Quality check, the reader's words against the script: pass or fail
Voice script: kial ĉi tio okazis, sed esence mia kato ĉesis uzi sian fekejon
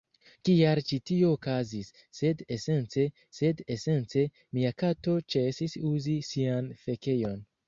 fail